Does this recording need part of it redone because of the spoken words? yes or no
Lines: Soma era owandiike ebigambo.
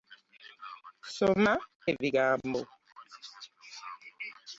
yes